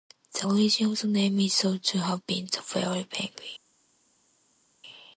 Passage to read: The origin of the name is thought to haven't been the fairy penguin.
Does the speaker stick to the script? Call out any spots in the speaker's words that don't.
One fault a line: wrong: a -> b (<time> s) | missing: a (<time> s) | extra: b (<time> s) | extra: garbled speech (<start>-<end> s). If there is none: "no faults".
wrong: haven't -> have (2.0 s)